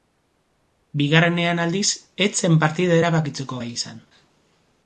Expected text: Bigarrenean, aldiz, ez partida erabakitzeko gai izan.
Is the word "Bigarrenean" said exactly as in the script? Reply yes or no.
yes